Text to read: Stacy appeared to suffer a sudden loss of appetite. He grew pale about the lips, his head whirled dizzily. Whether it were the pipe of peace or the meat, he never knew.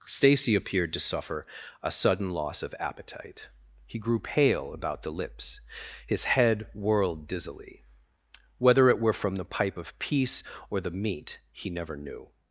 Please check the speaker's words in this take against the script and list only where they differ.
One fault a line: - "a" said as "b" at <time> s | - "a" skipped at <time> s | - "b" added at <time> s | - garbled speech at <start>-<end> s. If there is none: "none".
- "from" added at 9.1 s